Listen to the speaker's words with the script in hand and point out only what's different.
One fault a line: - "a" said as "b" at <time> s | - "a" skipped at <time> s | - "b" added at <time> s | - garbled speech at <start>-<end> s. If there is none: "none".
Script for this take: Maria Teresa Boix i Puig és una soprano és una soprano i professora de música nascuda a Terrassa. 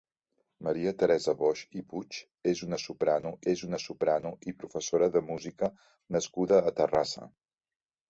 none